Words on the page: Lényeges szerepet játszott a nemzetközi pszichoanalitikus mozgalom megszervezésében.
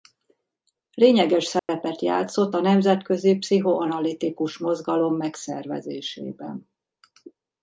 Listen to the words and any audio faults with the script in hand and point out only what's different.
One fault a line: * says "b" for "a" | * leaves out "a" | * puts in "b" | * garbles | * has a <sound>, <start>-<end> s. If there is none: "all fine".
* has a dropout, 1.6-1.7 s